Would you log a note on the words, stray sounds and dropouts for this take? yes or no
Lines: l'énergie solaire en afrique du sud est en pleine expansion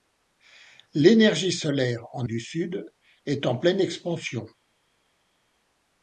yes